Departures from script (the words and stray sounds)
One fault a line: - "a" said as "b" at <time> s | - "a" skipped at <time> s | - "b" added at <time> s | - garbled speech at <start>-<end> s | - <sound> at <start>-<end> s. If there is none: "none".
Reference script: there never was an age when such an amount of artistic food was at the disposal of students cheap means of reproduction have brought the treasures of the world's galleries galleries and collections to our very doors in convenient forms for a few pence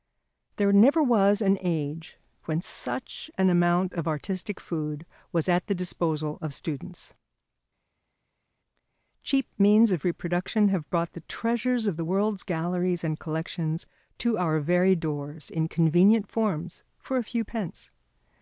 - "galleries" skipped at 13.0 s